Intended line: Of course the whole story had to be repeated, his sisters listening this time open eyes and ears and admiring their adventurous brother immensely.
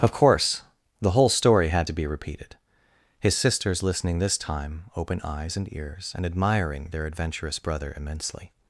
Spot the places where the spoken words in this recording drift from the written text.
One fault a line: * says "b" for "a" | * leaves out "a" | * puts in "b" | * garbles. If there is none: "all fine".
all fine